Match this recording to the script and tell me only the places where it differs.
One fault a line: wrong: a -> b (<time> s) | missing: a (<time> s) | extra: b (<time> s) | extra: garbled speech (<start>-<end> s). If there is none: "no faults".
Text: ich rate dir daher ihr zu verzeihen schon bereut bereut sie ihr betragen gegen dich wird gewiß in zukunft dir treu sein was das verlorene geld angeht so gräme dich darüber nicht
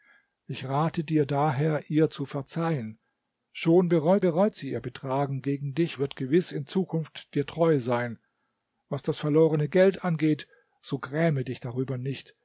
no faults